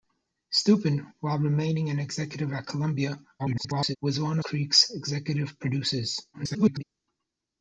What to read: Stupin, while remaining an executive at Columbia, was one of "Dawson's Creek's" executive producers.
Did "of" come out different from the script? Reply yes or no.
yes